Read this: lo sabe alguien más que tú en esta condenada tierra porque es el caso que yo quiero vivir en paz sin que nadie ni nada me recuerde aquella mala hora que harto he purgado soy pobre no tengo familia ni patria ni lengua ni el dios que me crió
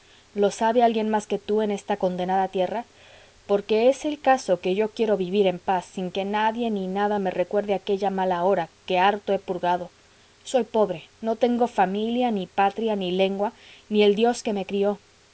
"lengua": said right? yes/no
yes